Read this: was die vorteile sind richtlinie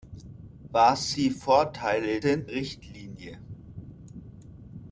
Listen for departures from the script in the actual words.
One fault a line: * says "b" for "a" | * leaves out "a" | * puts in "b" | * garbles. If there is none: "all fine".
all fine